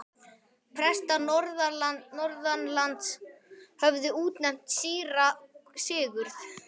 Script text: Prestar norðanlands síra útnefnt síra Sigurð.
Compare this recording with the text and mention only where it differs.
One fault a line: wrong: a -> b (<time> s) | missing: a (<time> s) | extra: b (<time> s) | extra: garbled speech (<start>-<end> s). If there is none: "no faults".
wrong: síra -> höfðu (3.8 s)